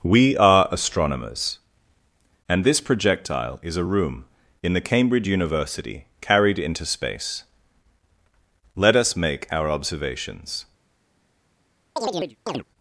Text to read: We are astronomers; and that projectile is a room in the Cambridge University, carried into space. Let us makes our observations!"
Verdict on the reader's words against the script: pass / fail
fail